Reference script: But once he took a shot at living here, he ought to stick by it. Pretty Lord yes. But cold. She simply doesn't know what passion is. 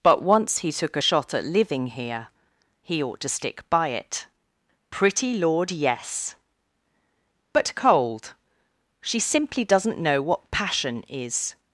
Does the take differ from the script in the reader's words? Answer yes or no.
no